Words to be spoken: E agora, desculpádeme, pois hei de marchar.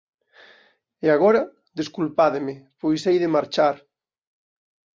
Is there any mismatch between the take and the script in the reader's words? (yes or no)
no